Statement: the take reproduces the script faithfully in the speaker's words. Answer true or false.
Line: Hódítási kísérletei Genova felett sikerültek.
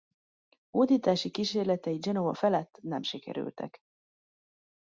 false